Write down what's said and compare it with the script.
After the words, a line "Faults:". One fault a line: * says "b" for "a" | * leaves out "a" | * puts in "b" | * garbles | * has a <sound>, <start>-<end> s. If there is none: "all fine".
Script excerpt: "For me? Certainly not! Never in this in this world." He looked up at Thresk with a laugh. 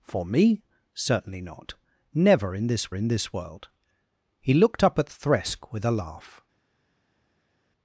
"For me? Certainly not! Never in this in this world." He looked up at Thresk with a laugh.
Faults:
all fine